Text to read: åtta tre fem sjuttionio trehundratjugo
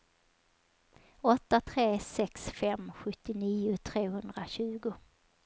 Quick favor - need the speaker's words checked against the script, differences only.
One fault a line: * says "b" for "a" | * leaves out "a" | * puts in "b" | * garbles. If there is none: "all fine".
* puts in "sex"